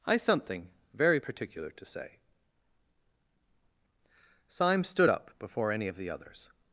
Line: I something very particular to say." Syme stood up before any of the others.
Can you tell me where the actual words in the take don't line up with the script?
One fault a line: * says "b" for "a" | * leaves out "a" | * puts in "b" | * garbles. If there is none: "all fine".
all fine